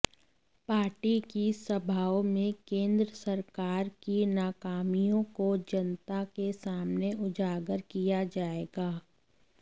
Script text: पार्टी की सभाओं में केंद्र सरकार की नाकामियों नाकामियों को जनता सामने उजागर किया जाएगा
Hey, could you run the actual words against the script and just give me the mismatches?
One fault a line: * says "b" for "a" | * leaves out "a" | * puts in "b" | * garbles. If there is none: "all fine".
* leaves out "नाकामियों"
* puts in "के"